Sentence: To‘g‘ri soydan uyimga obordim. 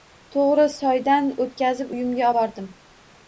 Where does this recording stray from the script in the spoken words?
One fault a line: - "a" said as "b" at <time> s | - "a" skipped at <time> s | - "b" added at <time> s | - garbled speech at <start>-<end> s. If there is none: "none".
- "o‘tkazib" added at 1.4 s